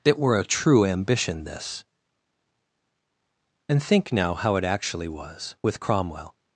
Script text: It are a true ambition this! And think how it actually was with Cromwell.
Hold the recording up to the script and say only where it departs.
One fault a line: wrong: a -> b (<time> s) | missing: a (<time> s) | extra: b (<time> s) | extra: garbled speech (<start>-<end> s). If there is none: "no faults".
wrong: are -> were (0.2 s)
extra: now (4.1 s)